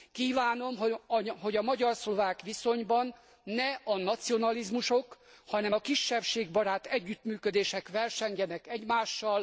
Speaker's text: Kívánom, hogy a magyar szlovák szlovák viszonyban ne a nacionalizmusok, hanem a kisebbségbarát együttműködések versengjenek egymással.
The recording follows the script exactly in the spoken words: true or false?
false